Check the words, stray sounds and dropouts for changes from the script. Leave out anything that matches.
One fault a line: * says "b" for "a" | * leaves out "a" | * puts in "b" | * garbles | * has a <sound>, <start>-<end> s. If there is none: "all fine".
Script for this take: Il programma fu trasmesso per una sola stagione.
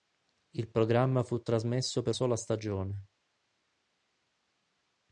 * leaves out "una"